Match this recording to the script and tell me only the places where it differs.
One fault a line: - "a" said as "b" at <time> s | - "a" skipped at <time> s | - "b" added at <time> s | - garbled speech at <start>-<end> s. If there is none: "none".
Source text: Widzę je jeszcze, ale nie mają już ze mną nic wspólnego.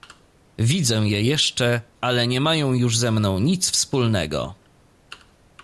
none